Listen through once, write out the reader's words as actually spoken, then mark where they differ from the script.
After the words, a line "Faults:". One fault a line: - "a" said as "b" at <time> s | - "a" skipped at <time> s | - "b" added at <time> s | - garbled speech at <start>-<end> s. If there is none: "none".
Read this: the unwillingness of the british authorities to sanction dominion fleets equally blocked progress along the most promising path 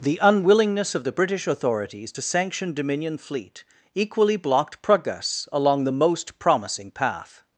the unwillingness of the british authorities to sanction dominion fleet equally blocked progress along the most promising path
Faults:
- "fleets" said as "fleet" at 3.2 s